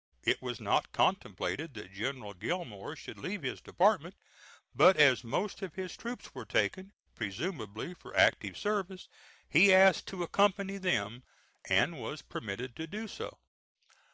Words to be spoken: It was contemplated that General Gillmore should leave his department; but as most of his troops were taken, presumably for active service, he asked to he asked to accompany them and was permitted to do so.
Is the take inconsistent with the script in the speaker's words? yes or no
yes